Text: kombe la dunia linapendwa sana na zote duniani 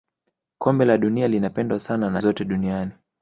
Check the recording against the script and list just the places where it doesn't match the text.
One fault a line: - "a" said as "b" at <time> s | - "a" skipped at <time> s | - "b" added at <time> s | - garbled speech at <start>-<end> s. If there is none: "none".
none